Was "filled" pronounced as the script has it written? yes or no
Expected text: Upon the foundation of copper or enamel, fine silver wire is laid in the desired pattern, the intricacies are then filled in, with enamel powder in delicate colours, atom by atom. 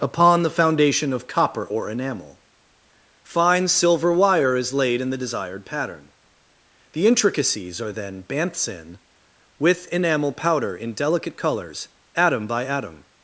no